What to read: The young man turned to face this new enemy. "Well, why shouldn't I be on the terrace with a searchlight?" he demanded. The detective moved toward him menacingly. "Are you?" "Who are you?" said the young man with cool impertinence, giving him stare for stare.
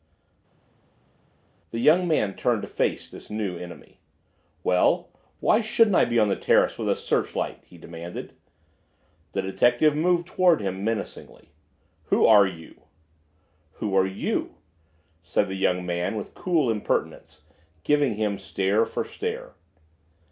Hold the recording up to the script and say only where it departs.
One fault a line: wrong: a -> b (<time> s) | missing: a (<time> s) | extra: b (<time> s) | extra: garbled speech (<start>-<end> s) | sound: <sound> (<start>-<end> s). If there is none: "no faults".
extra: Who (12.0 s)